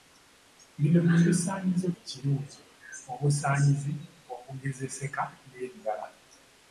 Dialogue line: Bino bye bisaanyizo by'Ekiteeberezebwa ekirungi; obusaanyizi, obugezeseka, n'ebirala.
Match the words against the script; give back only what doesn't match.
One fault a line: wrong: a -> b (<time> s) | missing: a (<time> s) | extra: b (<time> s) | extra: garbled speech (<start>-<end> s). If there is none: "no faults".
missing: by'Ekiteeberezebwa (1.9 s)